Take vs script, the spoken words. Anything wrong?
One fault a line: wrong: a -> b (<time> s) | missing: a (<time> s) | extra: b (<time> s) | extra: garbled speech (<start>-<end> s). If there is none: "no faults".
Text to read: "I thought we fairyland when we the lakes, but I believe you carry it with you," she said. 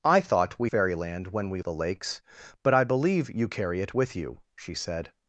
no faults